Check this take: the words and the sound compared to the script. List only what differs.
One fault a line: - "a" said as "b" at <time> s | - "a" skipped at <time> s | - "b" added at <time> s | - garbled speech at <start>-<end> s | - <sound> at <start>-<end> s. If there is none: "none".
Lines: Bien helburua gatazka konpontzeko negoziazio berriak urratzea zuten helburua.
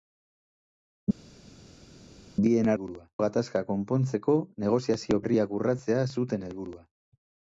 none